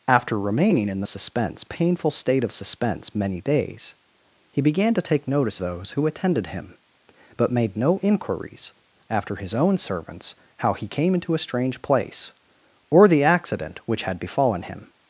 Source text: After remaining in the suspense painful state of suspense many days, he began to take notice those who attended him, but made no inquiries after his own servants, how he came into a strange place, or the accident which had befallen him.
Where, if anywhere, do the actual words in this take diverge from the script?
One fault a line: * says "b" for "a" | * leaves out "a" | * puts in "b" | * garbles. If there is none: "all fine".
all fine